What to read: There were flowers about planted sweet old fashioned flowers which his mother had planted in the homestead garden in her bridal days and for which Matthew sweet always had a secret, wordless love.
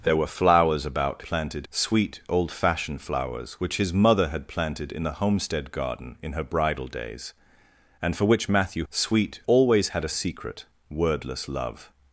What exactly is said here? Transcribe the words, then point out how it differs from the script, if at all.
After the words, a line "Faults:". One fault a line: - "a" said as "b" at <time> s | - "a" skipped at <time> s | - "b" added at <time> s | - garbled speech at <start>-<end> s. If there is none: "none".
There were flowers about planted sweet old fashioned flowers which his mother had planted in the homestead garden in her bridal days and for which Matthew sweet always had a secret, wordless love.
Faults:
none